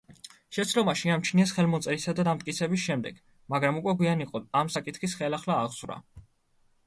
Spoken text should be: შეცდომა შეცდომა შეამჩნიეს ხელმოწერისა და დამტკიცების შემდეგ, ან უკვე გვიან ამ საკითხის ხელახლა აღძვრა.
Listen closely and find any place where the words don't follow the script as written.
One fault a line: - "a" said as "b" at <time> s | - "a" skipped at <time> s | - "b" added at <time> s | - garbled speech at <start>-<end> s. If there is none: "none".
- "შეცდომა" skipped at 0.9 s
- "ან" said as "მაგრამ" at 3.5 s
- "იყო" added at 4.3 s